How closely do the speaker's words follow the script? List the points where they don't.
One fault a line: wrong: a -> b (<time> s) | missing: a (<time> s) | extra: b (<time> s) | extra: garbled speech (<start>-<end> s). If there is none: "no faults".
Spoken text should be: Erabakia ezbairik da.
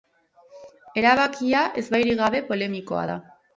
extra: gabe polemikoa (2.2 s)